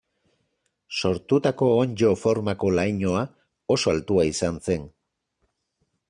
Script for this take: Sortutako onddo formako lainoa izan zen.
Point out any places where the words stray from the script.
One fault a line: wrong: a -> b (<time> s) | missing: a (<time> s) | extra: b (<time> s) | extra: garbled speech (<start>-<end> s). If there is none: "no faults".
extra: oso altua (3.8 s)